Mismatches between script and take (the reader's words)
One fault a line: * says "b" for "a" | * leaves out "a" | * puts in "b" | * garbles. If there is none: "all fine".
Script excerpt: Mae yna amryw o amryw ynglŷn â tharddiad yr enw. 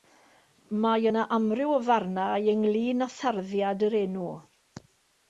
* says "farnau" for "amryw"